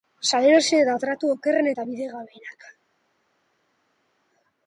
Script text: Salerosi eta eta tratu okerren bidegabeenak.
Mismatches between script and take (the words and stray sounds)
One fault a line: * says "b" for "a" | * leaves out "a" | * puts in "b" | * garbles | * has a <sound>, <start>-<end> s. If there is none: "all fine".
* leaves out "eta"
* puts in "eta"